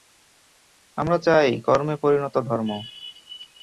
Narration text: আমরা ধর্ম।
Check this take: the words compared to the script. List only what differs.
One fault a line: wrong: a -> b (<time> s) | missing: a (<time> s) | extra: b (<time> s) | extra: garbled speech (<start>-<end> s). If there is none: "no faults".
extra: চাই কর্মে পরিণত (1.2 s)